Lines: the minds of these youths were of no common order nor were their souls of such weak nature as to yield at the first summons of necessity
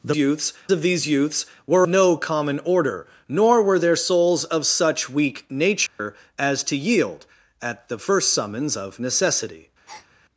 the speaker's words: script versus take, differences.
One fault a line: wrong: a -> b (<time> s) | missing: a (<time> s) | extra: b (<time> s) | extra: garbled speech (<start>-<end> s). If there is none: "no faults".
wrong: minds -> youths (0.1 s)
missing: of (1.9 s)